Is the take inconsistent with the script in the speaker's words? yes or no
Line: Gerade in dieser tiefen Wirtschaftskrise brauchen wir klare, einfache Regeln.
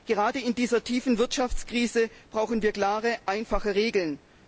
no